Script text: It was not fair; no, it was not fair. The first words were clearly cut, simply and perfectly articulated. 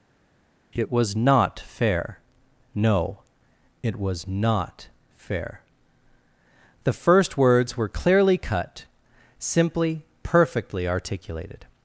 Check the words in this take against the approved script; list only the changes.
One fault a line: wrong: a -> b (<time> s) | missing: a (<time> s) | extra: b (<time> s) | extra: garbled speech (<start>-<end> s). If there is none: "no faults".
missing: and (10.0 s)